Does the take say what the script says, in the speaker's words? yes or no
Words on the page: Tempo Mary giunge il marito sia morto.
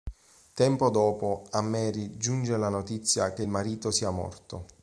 no